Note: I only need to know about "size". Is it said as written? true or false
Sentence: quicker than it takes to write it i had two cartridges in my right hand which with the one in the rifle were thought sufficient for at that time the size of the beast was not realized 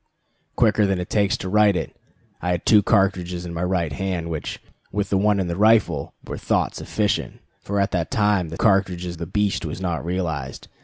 false